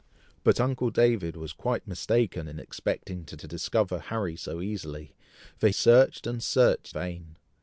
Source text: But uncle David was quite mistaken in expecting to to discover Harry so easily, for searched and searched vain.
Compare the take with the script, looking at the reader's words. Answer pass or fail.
pass